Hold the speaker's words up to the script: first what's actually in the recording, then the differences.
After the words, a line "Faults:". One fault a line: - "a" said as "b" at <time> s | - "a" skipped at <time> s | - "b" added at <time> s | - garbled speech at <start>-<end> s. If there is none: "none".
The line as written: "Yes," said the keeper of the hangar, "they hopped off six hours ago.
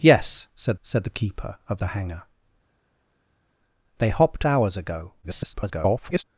"Yes," said said the keeper of the hangar, "they hopped hours ago. [garbled]
Faults:
- "said" added at 0.8 s
- "off six" skipped at 4.4 s
- garbled speech at 5.2-6.2 s